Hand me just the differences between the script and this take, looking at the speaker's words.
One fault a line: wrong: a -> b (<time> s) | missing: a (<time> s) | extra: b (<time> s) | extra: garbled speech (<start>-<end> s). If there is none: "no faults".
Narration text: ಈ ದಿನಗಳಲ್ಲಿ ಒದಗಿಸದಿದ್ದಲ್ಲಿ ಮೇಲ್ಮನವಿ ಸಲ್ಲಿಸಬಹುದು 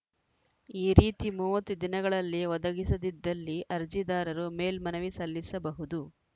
extra: ರೀತಿ ಮೂವತ್ತು (1.0 s)
extra: ಅರ್ಜಿದಾರರು (3.8 s)